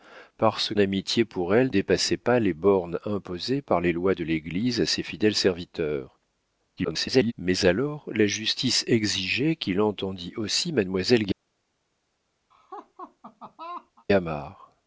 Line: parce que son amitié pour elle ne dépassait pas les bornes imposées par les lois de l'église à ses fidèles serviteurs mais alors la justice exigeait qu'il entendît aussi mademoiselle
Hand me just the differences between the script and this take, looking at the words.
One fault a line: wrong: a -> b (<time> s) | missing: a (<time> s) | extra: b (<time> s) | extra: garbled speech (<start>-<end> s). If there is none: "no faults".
missing: que son (0.7 s)
missing: ne (1.7 s)
extra: garbled speech (6.8-7.3 s)